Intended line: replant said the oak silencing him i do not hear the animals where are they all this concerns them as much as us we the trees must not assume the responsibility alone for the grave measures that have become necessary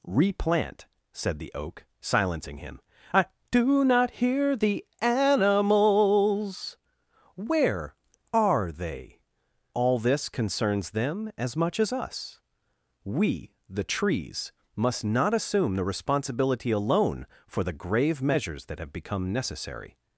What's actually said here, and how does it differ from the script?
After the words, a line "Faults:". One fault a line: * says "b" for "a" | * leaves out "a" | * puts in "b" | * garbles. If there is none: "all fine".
replant said the oak silencing him i do not hear the animals where are they all this concerns them as much as us we the trees must not assume the responsibility alone for the grave measures that have become necessary
Faults:
all fine